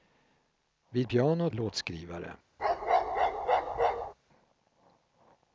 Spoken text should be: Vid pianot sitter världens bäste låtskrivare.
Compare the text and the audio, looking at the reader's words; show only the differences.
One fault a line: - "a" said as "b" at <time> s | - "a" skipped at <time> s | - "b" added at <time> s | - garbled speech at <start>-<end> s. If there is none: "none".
- "sitter världens bäste" skipped at 1.5 s